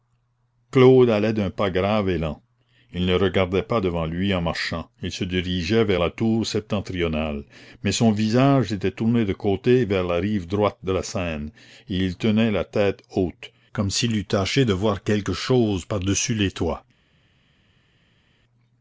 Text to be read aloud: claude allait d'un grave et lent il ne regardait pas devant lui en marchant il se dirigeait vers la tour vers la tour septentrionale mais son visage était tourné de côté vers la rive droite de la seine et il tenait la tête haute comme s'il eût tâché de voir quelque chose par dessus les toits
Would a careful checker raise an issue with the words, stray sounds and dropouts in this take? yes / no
yes